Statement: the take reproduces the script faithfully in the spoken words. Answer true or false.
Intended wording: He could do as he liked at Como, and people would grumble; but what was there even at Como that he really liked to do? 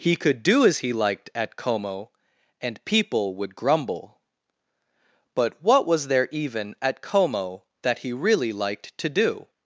true